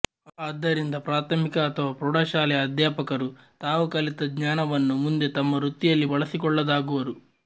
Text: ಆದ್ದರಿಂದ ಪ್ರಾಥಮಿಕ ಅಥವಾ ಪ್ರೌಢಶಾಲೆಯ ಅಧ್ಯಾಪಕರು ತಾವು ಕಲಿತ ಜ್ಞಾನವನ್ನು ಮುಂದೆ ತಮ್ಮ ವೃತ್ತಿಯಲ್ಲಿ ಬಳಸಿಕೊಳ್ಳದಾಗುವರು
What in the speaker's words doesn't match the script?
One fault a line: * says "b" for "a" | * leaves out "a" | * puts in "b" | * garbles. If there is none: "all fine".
all fine